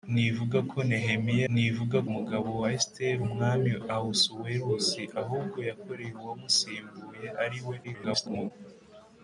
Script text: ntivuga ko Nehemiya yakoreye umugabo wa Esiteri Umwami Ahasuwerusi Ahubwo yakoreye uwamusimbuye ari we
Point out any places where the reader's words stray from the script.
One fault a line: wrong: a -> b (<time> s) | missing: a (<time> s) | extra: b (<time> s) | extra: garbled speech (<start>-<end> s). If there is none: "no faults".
wrong: yakoreye -> ntivuga (1.5 s)
extra: garbled speech (7.8-8.5 s)